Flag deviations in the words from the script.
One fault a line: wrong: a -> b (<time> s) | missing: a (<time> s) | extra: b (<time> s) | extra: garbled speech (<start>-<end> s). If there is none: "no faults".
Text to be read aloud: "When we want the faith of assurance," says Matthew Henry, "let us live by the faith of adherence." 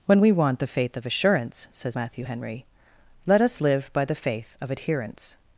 no faults